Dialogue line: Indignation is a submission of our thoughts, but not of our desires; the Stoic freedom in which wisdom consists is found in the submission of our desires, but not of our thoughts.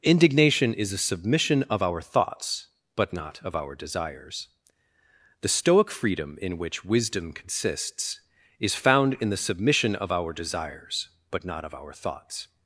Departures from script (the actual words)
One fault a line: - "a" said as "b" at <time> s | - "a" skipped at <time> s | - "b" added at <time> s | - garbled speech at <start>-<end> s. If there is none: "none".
none